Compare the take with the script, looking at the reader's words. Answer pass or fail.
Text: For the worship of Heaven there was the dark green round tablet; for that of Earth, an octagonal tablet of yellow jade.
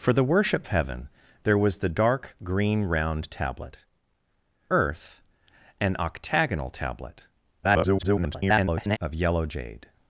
fail